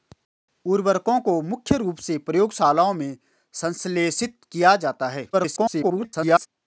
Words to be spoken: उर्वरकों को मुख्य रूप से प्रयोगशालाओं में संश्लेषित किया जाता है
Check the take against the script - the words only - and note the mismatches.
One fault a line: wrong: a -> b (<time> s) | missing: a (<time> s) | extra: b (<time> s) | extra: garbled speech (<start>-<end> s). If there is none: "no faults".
extra: garbled speech (5.3-6.5 s)